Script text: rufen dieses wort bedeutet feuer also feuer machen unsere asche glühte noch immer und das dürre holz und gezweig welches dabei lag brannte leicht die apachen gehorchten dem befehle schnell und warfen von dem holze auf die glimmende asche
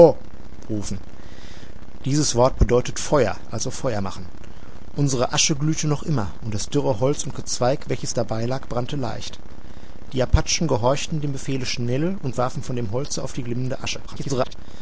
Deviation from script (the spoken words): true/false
true